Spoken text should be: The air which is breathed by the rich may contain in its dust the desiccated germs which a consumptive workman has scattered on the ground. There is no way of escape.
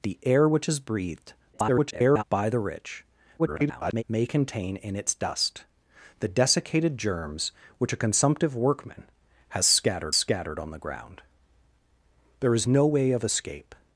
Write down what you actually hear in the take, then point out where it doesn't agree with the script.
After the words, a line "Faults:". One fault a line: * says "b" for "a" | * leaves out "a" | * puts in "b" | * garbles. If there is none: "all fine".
The air which is breathed [garbled] by the rich [garbled] may contain in its dust the desiccated germs which a consumptive workman has scattered scattered on the ground. There is no way of escape.
Faults:
* garbles
* garbles
* puts in "scattered"